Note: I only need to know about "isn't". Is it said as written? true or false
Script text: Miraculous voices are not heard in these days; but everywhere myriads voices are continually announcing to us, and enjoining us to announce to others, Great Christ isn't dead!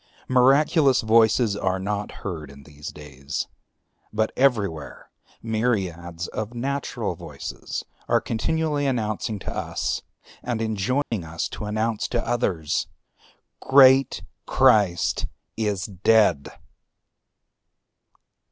false